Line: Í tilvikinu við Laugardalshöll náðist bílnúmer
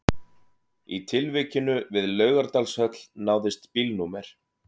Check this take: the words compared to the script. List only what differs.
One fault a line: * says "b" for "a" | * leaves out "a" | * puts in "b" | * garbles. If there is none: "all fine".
all fine